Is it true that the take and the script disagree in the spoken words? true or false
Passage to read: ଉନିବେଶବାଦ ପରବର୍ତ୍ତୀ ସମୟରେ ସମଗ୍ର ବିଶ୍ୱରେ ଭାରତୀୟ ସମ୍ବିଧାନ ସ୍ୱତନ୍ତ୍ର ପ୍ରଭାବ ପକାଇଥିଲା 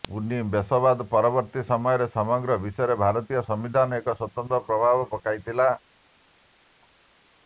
true